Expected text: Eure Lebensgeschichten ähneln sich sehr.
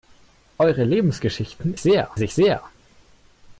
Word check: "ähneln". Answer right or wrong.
wrong